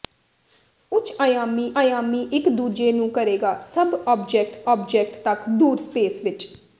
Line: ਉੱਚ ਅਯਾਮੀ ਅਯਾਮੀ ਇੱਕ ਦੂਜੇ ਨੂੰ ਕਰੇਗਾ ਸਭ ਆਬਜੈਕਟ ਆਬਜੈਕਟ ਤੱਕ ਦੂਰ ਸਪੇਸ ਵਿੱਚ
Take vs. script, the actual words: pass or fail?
pass